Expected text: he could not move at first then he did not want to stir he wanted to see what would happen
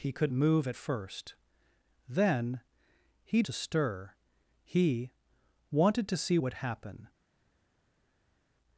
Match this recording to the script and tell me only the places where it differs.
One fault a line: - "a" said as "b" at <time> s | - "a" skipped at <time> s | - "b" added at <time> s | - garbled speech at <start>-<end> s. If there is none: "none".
- "not" skipped at 0.3 s
- "did not want" skipped at 3.4 s
- "what" skipped at 6.4 s